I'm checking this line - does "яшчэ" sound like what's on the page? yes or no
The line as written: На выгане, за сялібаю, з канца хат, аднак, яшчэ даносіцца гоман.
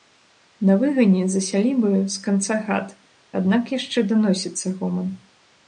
yes